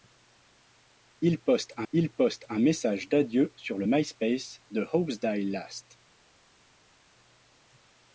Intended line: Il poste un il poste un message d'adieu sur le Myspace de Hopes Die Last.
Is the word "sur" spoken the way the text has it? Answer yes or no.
yes